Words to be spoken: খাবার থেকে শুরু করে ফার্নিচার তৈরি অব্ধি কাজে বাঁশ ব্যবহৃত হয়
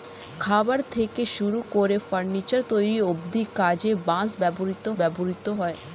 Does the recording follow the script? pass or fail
fail